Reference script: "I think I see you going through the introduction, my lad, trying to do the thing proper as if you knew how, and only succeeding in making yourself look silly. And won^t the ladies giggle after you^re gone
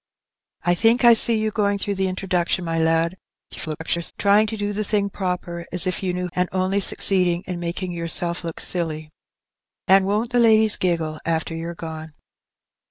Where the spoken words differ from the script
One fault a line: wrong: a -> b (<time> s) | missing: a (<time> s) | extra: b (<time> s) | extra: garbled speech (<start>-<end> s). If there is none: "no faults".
extra: garbled speech (3.5-4.1 s)
missing: how (6.3 s)